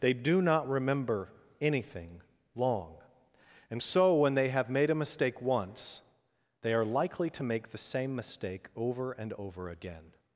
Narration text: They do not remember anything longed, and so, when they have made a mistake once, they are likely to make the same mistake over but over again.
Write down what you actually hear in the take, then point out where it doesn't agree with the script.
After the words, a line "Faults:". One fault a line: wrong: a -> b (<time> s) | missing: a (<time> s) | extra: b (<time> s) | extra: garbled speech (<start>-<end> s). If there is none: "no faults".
They do not remember anything long, and so, when they have made a mistake once, they are likely to make the same mistake over and over again.
Faults:
wrong: longed -> long (2.5 s)
wrong: but -> and (9.1 s)